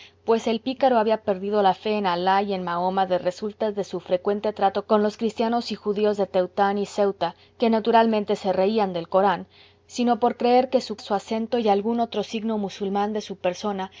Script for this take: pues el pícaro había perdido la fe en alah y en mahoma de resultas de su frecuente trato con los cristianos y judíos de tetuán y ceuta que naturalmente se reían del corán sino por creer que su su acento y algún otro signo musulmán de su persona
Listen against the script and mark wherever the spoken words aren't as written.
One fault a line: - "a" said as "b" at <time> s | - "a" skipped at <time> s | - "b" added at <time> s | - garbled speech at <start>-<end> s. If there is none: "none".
none